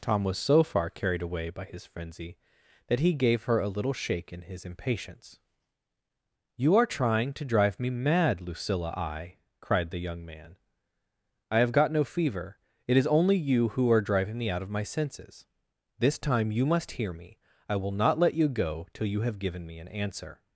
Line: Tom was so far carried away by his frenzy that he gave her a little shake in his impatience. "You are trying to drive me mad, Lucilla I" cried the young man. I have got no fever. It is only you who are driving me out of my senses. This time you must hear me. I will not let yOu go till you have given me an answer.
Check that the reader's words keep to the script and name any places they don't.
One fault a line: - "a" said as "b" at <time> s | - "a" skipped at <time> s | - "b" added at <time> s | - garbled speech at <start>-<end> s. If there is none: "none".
none